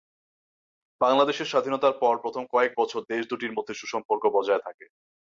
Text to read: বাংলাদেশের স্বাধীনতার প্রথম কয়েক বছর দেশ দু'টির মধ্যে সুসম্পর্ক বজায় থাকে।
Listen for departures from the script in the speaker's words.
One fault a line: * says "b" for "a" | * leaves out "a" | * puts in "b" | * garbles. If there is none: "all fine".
* puts in "পর"